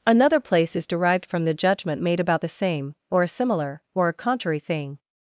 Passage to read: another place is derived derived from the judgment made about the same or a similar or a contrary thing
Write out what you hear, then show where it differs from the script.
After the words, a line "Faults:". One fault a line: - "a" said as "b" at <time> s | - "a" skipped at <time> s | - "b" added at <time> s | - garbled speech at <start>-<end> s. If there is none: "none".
another place is derived from the judgment made about the same or a similar or a contrary thing
Faults:
- "derived" skipped at 1.2 s